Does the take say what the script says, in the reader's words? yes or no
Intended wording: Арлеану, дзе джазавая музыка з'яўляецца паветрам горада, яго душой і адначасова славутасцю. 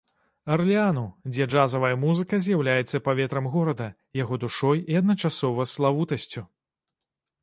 yes